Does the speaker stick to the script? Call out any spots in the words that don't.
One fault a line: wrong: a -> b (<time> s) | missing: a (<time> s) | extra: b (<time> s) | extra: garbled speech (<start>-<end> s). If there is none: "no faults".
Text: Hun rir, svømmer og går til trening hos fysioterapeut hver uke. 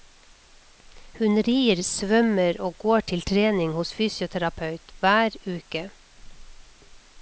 no faults